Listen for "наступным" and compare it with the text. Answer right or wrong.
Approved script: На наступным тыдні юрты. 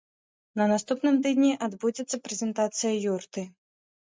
right